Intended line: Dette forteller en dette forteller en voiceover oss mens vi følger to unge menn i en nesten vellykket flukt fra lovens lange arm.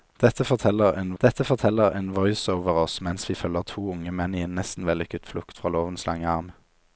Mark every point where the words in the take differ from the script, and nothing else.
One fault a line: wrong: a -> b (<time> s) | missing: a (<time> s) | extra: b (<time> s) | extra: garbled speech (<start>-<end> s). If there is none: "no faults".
no faults